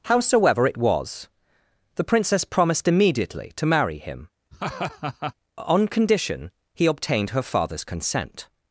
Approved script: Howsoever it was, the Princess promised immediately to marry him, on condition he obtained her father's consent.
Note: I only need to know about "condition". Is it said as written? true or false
true